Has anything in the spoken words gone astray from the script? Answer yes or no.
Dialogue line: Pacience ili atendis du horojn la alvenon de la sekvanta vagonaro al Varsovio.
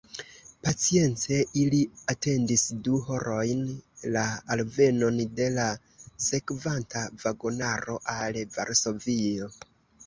no